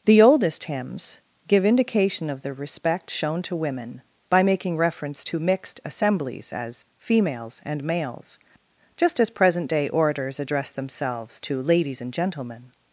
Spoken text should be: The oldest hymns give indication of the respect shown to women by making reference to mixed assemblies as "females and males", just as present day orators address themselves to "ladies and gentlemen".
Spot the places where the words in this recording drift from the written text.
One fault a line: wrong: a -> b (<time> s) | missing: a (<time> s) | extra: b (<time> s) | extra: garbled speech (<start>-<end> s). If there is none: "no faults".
no faults